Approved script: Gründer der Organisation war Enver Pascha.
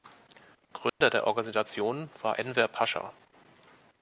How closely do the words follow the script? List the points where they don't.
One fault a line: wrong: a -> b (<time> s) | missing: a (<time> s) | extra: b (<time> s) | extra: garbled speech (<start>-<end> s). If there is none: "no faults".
no faults